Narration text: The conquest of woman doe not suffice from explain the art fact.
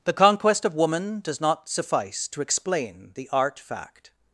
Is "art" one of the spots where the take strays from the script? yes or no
no